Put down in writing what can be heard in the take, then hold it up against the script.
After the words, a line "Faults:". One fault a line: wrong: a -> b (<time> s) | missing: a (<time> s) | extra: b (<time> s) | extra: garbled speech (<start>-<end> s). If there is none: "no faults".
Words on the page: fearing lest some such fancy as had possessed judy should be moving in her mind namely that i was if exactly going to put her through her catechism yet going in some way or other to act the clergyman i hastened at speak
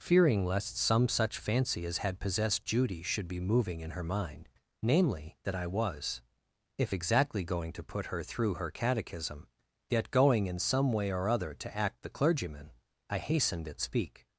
fearing lest some such fancy as had possessed judy should be moving in her mind namely that i was if exactly going to put her through her catechism yet going in some way or other to act the clergyman i hastened at speak
Faults:
no faults